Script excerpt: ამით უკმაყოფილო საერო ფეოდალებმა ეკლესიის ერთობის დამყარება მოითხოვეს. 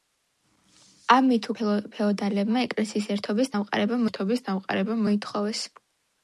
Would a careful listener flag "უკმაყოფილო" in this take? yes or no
yes